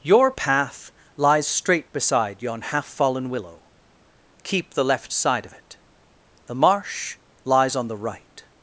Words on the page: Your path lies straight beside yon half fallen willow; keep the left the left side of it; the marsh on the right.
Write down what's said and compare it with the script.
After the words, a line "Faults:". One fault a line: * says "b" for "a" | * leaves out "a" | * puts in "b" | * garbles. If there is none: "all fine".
Your path lies straight beside yon half fallen willow; keep the left side of it; the marsh lies on the right.
Faults:
* leaves out "the left"
* puts in "lies"